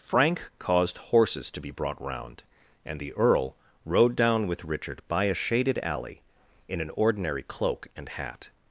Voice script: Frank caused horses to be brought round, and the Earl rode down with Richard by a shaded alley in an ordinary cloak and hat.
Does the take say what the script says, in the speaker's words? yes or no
yes